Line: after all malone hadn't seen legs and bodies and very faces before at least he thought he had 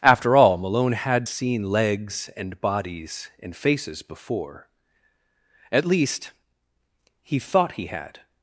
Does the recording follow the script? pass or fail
fail